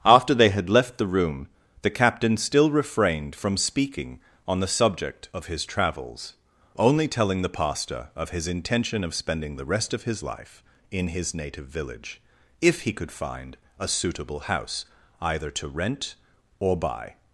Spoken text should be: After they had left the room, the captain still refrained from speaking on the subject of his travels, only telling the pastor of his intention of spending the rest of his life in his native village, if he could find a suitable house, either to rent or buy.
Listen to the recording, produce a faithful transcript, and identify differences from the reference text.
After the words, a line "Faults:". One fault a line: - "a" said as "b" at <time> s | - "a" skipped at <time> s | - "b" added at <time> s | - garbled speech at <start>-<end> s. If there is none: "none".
After they had left the room, the captain still refrained from speaking on the subject of his travels, only telling the pastor of his intention of spending the rest of his life in his native village, if he could find a suitable house, either to rent or buy.
Faults:
none